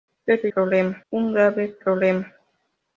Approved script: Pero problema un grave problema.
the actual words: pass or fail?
pass